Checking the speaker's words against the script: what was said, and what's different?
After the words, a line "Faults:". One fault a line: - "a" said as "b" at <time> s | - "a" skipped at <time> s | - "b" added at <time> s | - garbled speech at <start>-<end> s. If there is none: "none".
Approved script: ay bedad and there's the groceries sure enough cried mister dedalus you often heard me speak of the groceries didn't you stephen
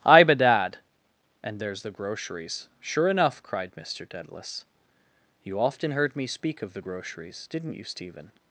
ay bedad and there's the groceries sure enough cried mister dedalus you often heard me speak of the groceries didn't you stephen
Faults:
none